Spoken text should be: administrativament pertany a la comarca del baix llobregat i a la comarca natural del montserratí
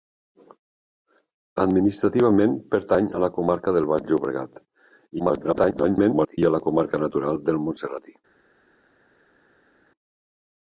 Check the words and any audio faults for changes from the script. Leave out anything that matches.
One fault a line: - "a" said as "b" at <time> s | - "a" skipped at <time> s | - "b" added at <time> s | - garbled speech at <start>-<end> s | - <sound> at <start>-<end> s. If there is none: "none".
- garbled speech at 5.2-6.4 s